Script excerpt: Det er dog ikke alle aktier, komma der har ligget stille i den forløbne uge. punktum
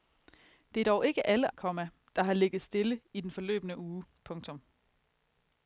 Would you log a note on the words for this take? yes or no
yes